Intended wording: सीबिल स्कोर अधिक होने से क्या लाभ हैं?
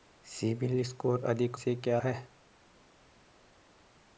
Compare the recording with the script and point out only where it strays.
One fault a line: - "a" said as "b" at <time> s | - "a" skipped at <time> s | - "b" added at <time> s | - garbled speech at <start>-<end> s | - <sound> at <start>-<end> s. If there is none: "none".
- "होने" skipped at 1.6 s
- "लाभ" skipped at 2.0 s